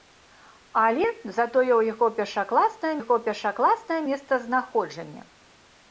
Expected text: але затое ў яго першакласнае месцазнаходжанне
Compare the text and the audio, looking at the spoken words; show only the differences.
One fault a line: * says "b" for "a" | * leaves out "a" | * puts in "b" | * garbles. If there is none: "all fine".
* puts in "яго першакласнае"